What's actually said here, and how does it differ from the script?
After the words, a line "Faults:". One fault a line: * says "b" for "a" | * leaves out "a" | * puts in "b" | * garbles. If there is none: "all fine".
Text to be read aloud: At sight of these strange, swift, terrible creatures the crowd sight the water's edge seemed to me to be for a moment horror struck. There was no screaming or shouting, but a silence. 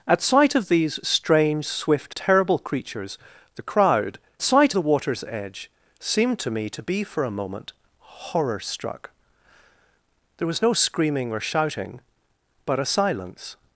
At sight of these strange, swift, terrible creatures the crowd sight the water's edge seemed to me to be for a moment horror struck. There was no screaming or shouting, but a silence.
Faults:
all fine